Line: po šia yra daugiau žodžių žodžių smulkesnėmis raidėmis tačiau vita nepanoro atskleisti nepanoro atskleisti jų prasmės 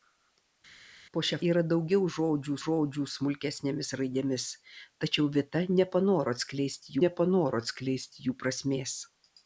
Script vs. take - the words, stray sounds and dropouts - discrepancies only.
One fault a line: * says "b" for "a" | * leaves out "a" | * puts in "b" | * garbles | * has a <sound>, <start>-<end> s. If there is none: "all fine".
all fine